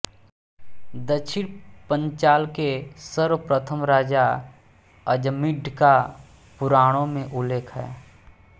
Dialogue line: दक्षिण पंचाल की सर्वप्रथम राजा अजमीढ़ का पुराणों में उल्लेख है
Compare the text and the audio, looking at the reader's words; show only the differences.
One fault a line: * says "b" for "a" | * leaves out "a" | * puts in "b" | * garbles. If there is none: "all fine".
* says "के" for "की"